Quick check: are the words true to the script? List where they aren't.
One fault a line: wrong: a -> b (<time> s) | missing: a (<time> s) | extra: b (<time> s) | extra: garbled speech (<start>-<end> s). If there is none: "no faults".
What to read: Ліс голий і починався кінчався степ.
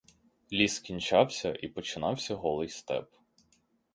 wrong: голий -> кінчався (0.8 s)
wrong: кінчався -> голий (2.3 s)